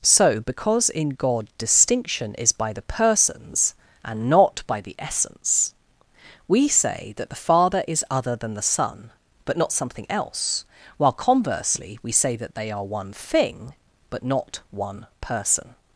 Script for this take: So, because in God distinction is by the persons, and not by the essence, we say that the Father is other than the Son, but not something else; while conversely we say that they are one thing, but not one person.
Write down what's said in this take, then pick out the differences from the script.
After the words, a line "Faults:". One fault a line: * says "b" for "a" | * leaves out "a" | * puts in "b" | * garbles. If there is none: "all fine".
So, because in God distinction is by the persons, and not by the essence, we say that the Father is other than the Son, but not something else; while conversely we say that they are one thing, but not one person.
Faults:
all fine